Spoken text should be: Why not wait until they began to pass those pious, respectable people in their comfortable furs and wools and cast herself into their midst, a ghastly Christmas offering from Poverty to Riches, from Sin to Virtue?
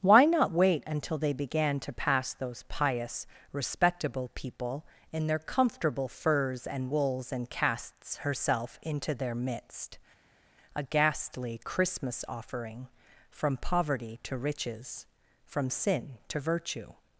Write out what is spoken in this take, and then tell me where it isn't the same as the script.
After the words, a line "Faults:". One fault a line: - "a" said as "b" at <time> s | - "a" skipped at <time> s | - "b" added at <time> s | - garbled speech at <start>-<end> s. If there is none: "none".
Why not wait until they began to pass those pious, respectable people in their comfortable furs and wools and casts herself into their midst, a ghastly Christmas offering from Poverty to Riches, from Sin to Virtue?
Faults:
- "cast" said as "casts" at 7.5 s